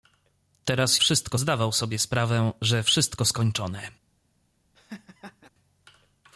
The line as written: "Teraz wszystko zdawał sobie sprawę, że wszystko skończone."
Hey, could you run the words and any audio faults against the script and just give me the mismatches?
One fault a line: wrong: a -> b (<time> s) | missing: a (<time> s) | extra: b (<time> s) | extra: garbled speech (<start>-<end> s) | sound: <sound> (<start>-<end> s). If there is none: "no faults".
sound: laugh (4.7-5.5 s)